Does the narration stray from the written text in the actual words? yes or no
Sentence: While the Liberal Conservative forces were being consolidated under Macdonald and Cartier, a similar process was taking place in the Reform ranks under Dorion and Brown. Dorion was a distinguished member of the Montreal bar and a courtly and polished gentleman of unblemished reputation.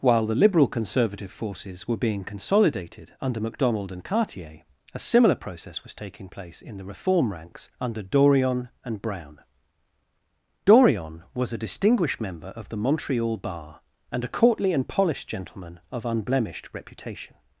no